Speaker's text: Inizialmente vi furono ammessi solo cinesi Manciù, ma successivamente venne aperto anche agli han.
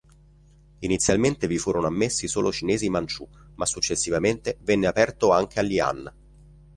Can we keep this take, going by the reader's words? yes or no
yes